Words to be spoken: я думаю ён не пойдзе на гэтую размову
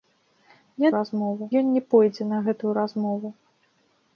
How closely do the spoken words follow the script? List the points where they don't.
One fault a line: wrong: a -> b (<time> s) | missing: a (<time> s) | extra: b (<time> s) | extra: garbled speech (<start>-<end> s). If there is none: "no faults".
wrong: думаю -> размову (1.0 s)